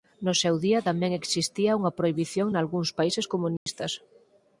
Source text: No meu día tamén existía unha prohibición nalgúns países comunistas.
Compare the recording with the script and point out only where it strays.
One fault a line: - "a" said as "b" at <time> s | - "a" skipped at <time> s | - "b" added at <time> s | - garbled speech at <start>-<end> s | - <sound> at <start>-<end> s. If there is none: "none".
- "meu" said as "seu" at 0.4 s
- dropout at 3.6-3.7 s